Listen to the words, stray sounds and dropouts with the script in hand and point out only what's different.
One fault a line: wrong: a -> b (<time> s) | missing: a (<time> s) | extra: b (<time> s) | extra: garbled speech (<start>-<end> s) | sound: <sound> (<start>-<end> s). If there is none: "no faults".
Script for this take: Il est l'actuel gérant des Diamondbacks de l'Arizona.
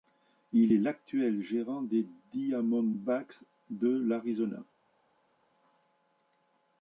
no faults